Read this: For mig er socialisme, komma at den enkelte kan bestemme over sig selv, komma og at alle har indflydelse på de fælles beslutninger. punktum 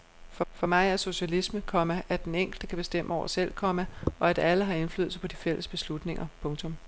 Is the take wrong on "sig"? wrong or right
wrong